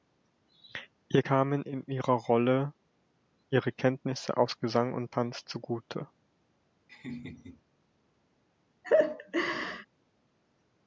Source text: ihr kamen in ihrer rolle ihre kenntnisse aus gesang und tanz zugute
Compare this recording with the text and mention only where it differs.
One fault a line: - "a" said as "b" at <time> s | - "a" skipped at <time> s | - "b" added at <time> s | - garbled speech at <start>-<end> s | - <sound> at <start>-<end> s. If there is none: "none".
- laugh at 6.9-7.6 s
- laugh at 8.8-9.9 s